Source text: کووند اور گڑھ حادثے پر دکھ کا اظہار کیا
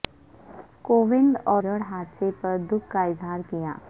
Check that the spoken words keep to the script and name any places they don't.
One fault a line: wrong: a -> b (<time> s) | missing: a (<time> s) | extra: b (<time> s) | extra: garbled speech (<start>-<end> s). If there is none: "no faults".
no faults